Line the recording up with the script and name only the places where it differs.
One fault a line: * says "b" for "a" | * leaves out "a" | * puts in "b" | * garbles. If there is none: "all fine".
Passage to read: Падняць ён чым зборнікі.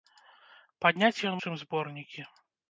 all fine